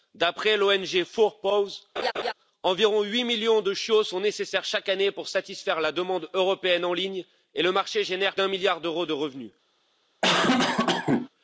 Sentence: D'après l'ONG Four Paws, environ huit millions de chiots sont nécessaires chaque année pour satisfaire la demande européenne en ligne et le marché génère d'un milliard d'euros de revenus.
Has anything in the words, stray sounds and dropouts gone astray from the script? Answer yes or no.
yes